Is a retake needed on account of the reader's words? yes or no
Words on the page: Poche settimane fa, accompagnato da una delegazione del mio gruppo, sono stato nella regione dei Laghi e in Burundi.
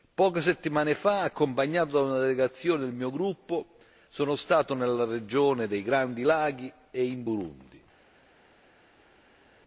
yes